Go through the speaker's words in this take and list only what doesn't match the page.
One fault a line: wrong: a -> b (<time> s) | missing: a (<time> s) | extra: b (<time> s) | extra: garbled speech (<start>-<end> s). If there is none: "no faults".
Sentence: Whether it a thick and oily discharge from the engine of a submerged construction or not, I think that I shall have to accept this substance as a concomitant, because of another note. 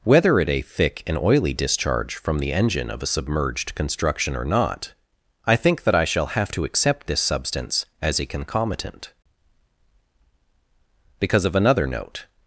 no faults